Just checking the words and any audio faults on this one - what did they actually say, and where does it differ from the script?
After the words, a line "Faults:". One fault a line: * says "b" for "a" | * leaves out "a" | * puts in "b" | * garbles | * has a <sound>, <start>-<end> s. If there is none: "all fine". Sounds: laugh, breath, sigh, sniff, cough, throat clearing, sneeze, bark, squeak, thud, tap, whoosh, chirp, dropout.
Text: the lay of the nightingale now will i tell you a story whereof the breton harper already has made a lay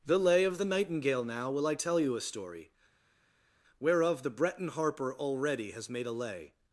the lay of the nightingale now will i tell you a story whereof the breton harper already has made a lay
Faults:
all fine